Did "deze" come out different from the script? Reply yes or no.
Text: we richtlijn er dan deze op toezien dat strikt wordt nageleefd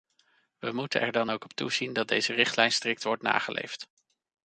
yes